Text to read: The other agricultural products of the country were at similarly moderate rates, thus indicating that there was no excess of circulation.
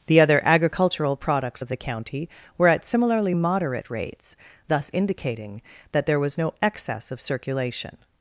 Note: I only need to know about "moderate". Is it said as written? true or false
true